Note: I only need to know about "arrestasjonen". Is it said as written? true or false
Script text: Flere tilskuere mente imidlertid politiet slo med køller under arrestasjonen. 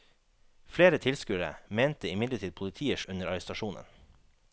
true